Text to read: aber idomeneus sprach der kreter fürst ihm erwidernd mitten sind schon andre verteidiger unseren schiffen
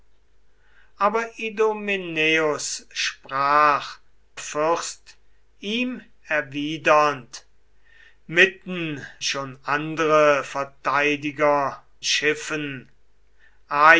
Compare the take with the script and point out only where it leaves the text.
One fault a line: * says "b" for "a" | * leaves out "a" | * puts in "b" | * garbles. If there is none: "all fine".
* leaves out "der kreter"
* leaves out "sind"
* leaves out "unseren"